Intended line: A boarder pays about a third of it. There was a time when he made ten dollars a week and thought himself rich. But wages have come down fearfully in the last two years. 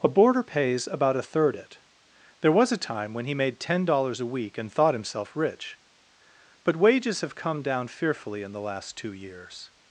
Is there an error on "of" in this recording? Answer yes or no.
yes